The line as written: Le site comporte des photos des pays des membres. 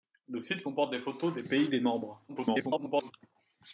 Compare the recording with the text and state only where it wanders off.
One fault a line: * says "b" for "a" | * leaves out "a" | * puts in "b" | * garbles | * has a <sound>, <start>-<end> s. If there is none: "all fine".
* garbles